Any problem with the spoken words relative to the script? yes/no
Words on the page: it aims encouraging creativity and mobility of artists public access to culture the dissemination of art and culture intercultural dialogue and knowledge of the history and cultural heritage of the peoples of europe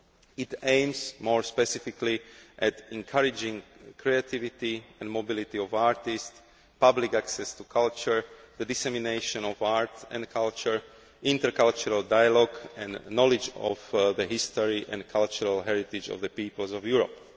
yes